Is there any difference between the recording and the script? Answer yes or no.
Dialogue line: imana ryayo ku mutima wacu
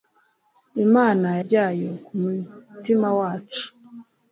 no